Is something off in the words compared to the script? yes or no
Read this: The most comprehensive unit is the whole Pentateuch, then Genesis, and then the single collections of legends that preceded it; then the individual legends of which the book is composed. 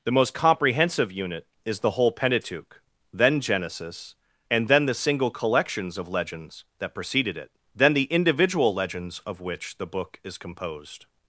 no